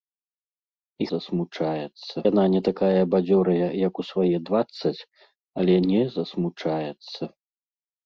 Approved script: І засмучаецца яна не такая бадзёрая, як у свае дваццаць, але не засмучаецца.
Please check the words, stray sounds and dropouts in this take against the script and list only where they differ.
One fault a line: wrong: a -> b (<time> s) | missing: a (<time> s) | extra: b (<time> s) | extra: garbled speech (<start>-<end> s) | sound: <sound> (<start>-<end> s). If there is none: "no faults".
no faults